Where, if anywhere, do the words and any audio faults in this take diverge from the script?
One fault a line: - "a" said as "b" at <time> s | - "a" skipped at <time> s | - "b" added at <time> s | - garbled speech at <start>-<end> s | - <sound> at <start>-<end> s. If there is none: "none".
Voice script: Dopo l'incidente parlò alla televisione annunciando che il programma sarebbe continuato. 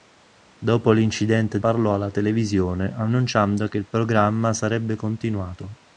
none